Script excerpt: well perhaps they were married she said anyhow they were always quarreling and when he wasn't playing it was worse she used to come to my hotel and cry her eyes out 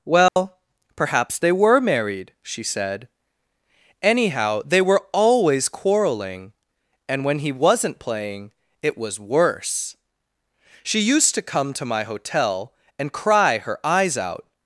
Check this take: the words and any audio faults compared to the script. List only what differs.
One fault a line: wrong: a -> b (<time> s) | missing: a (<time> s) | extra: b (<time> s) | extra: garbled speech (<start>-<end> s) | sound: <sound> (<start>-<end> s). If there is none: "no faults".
sound: dropout (0.3-0.4 s)